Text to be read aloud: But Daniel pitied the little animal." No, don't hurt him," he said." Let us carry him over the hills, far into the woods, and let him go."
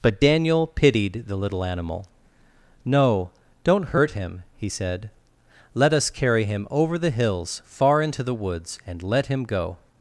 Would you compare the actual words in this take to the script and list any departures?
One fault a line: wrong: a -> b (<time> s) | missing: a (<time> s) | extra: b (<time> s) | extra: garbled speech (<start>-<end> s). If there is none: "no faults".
no faults